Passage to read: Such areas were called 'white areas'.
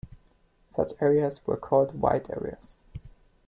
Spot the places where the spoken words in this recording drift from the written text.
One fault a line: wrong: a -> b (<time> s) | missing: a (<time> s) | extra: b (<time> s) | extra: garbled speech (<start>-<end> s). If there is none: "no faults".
no faults